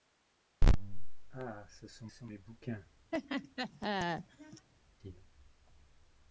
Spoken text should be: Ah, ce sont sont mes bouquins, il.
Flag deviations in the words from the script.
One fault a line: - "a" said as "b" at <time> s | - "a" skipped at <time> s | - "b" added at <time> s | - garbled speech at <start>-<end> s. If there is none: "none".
none